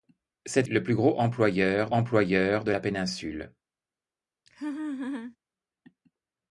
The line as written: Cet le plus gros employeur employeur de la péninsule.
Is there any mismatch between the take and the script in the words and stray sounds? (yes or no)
yes